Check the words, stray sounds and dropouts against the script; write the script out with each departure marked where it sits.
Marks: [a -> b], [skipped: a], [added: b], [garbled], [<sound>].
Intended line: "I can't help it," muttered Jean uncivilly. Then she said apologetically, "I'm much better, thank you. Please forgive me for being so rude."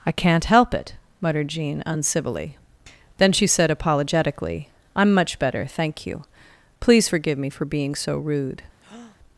"I can't help it," muttered Jean uncivilly. Then she said apologetically, "I'm much better, thank you. Please forgive me for being so rude." [breath]